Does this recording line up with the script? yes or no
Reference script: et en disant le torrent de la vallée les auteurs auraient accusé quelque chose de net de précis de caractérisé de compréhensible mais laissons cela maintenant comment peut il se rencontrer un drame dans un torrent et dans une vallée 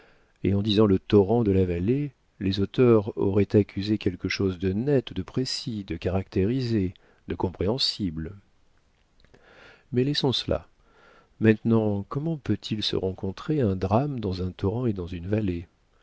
yes